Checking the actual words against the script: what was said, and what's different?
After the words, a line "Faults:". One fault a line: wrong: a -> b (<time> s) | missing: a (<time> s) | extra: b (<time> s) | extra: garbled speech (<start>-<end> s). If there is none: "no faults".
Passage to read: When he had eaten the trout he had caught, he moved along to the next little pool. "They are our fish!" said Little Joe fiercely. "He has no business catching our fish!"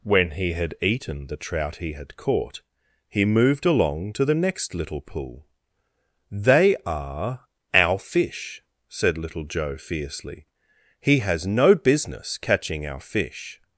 When he had eaten the trout he had caught, he moved along to the next little pool. "They are our fish!" said Little Joe fiercely. "He has no business catching our fish!"
Faults:
no faults